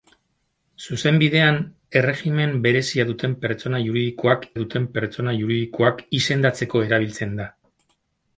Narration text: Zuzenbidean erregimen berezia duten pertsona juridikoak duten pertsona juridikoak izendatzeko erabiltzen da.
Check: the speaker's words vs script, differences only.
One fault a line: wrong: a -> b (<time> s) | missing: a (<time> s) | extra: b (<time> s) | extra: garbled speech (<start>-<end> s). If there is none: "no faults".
no faults